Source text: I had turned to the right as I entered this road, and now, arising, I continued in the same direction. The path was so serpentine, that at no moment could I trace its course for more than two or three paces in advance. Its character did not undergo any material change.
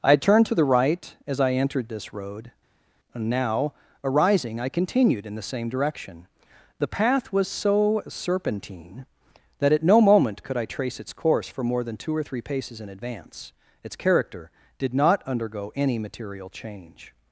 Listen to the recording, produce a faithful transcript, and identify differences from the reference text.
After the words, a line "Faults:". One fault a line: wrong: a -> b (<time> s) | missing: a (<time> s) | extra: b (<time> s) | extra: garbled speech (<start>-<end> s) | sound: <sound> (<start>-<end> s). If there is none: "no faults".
I had turned to the right as I entered this road, and now, arising, I continued in the same direction. The path was so serpentine, that at no moment could I trace its course for more than two or three paces in advance. Its character did not undergo any material change.
Faults:
no faults